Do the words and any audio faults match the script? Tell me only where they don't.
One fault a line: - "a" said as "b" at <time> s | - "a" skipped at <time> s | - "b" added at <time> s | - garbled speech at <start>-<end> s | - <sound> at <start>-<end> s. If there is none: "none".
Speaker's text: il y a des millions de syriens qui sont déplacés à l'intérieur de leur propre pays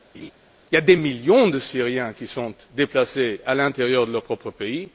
- laugh at 0.1-0.3 s